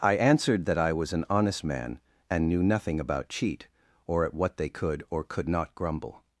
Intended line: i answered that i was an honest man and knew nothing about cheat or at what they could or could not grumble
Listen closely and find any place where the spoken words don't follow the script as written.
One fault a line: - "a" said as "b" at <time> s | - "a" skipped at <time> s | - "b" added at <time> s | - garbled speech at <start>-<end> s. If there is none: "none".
none